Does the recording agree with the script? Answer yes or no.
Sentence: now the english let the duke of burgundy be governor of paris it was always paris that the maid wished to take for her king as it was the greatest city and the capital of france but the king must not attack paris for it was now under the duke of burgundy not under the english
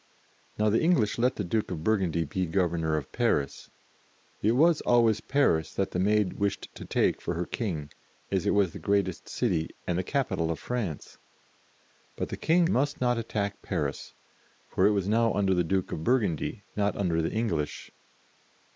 yes